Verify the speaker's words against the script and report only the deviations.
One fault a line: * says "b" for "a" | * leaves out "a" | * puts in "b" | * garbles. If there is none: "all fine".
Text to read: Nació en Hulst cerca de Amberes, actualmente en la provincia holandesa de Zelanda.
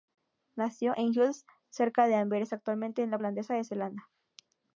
* leaves out "provincia"